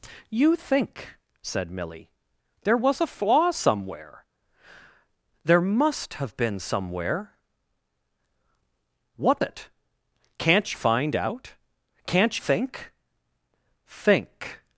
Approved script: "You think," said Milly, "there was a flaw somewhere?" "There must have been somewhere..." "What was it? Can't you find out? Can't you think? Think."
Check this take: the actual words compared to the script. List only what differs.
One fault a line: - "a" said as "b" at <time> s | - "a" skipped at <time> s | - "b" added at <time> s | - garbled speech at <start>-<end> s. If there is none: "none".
- "was" skipped at 9.4 s
- "you" skipped at 10.7 s
- "you" skipped at 12.4 s